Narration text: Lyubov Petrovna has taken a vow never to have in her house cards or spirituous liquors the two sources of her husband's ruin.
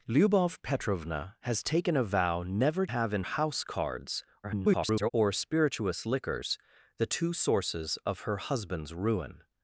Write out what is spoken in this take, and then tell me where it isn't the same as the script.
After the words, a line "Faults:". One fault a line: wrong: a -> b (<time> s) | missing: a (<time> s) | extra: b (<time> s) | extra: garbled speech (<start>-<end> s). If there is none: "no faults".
Lyubov Petrovna has taken a vow never have in house cards [garbled] or spirituous liquors the two sources of her husband's ruin.
Faults:
missing: to (2.9 s)
missing: her (3.2 s)
extra: garbled speech (4.4-5.1 s)